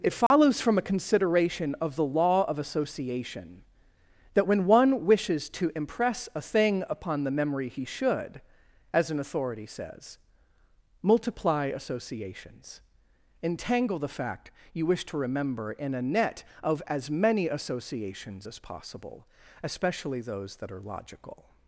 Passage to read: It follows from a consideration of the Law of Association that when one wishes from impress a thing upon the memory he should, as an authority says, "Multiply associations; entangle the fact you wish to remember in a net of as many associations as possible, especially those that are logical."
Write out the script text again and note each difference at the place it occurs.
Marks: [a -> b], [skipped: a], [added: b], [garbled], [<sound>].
It follows [dropout] from a consideration of the Law of Association that when one wishes [from -> to] impress a thing upon the memory he should, as an authority says, "Multiply associations; entangle the fact you wish to remember in a net of as many associations as possible, especially those that are logical."